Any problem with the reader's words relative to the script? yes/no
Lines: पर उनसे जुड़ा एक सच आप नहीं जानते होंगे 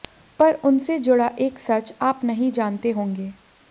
no